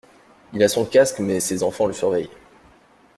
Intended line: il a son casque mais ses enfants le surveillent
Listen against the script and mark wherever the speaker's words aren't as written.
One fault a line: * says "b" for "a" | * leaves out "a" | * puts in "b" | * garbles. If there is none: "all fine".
all fine